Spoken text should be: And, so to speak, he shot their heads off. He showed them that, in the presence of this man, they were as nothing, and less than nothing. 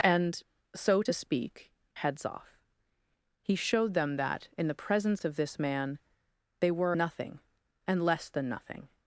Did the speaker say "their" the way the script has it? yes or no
no